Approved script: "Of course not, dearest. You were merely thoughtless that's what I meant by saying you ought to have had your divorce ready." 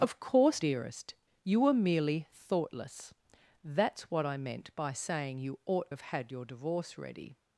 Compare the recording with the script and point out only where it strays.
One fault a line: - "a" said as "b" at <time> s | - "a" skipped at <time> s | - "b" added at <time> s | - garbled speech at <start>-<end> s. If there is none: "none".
- "not" skipped at 0.6 s
- "to" skipped at 5.9 s